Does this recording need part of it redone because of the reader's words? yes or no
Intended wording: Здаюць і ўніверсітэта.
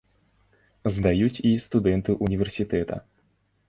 yes